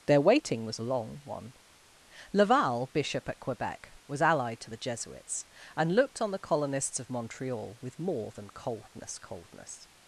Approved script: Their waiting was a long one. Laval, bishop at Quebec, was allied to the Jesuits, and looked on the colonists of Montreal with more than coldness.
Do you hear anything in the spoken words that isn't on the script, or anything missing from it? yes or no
yes